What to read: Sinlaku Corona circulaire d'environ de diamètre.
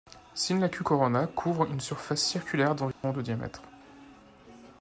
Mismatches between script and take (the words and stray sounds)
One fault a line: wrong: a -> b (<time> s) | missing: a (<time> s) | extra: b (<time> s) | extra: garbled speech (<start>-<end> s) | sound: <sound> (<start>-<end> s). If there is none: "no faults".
extra: couvre une surface (1.3 s)
sound: dropout (2.9-3.0 s)